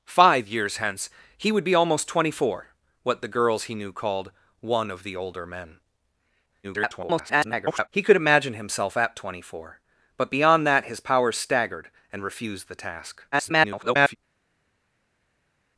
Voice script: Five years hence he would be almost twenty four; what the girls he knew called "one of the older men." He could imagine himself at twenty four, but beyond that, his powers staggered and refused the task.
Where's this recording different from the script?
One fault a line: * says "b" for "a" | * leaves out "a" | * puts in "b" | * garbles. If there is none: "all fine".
* garbles
* garbles